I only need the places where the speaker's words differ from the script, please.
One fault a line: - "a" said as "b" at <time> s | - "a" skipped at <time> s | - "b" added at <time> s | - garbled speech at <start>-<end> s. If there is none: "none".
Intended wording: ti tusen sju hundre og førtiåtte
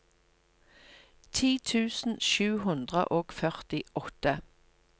none